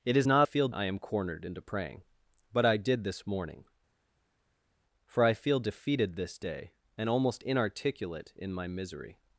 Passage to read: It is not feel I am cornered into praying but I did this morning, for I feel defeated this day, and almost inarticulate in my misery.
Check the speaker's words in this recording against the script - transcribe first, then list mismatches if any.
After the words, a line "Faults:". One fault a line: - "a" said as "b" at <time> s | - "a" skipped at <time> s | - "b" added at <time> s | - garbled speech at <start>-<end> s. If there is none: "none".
It is not feel I am cornered into praying but I did this morning, for I feel defeated this day, and almost inarticulate in my misery.
Faults:
none